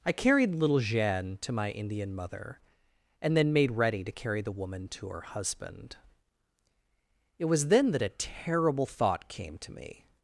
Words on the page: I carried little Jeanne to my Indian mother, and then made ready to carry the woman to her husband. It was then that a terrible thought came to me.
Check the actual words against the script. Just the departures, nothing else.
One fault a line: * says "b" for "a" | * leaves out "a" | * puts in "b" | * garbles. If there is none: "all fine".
all fine